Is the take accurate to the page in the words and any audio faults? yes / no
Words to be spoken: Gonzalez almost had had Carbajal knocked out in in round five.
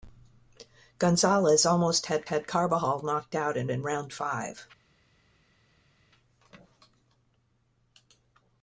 yes